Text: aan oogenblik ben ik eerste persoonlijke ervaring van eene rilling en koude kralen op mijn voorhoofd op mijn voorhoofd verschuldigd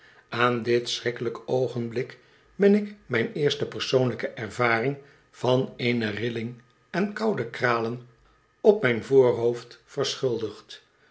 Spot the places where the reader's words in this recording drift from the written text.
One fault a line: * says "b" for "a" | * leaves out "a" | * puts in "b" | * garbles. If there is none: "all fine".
* puts in "dit schrikkelijk"
* puts in "mijn"
* leaves out "op mijn voorhoofd"